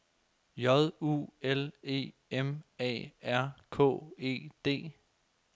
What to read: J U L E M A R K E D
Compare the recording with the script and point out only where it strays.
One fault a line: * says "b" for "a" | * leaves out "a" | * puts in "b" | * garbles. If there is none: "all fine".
all fine